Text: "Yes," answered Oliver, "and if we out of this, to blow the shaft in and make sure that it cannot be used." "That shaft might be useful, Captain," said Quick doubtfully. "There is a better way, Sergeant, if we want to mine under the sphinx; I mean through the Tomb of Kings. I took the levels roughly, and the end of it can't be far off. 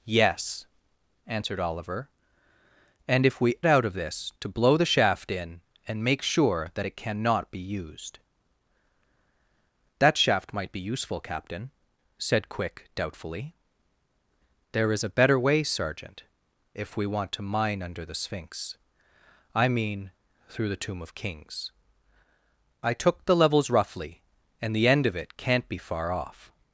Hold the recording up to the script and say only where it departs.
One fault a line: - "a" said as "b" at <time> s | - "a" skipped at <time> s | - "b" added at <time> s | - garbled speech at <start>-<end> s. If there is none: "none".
none